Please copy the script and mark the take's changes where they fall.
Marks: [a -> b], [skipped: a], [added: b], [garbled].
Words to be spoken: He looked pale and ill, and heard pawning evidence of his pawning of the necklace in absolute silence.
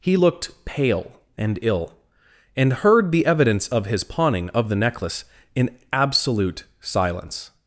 He looked pale and ill, and heard [pawning -> the] evidence of his pawning of the necklace in absolute silence.